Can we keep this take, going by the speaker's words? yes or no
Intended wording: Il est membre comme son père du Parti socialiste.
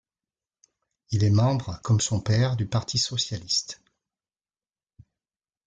yes